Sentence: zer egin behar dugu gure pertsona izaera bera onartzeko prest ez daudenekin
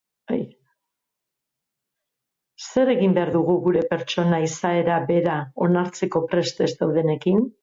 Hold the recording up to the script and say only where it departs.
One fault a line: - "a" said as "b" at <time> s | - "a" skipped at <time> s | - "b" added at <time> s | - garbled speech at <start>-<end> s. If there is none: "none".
none